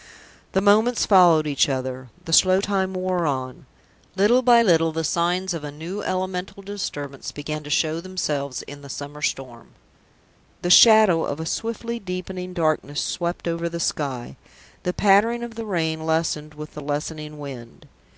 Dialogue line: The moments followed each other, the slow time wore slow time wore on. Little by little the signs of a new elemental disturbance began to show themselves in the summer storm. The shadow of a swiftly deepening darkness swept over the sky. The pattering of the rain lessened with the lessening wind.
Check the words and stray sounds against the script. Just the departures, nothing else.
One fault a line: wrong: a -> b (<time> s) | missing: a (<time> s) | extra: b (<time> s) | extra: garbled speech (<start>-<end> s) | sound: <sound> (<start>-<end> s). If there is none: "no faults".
missing: slow time wore (3.3 s)